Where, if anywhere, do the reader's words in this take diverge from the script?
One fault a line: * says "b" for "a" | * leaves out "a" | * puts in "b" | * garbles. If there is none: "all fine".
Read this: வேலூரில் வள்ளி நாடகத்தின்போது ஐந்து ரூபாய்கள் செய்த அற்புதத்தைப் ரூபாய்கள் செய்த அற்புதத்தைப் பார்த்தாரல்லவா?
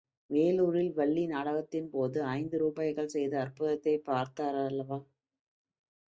* leaves out "ரூபாய்கள் செய்த அற்புதத்தைப்"